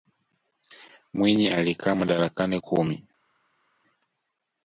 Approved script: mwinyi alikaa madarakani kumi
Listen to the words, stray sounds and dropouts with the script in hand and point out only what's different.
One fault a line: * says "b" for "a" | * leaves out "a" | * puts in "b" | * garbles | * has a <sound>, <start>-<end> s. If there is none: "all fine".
all fine